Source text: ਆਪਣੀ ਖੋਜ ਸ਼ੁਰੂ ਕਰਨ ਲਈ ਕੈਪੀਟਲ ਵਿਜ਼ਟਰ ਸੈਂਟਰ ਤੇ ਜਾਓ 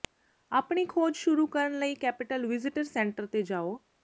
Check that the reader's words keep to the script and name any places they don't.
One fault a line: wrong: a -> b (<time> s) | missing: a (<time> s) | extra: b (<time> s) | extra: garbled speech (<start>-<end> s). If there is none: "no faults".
no faults